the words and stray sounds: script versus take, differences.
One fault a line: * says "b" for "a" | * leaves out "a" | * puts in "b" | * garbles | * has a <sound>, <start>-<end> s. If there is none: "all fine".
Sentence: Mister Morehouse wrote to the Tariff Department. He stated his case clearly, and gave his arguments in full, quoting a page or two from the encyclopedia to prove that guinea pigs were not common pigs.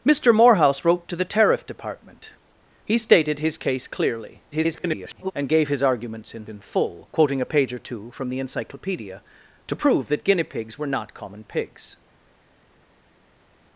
* garbles
* puts in "in"